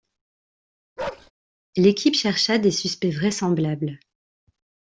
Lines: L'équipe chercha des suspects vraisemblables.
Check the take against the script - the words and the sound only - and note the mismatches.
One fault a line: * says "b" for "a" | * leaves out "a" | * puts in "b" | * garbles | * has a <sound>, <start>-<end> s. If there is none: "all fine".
* has a bark, 1.0-1.3 s